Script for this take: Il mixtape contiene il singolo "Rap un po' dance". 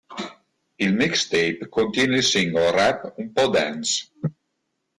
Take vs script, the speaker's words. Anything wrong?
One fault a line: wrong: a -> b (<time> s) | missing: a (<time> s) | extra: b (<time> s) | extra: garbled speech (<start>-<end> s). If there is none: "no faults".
no faults